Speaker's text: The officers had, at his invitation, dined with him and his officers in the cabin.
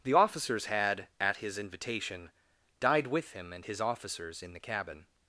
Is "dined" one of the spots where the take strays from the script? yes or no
yes